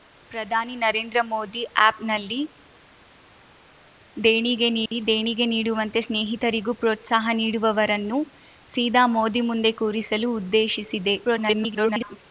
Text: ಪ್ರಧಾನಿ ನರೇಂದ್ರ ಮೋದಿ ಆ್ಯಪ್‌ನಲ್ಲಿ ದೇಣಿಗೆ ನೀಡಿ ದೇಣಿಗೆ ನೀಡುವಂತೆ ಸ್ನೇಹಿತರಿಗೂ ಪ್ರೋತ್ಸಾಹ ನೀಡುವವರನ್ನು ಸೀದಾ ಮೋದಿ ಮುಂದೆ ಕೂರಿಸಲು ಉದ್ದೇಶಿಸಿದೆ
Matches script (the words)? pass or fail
fail